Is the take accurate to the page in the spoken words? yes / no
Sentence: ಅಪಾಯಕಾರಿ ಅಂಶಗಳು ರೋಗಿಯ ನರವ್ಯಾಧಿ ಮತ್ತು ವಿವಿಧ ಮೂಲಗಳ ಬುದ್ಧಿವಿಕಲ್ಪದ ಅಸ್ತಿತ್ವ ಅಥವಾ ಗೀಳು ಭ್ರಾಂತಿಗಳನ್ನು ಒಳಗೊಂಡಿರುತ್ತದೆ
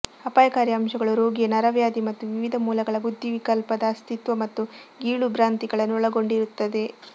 no